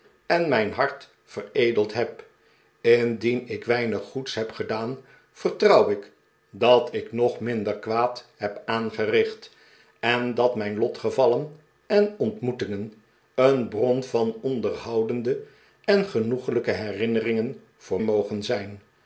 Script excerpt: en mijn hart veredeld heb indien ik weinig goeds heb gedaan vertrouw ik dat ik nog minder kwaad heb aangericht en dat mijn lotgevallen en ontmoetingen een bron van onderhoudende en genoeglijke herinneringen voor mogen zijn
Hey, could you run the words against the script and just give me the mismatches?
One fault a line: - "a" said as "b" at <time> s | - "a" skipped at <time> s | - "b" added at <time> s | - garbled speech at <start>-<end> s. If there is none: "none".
none